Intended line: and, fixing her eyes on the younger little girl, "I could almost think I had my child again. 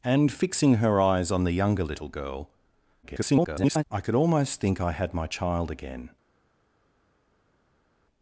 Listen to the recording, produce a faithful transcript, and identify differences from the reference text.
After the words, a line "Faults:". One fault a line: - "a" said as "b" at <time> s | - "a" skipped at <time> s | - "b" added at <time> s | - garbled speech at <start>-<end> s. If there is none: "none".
and, fixing her eyes on the younger little girl, [garbled] "I could almost think I had my child again.
Faults:
- garbled speech at 3.0-3.8 s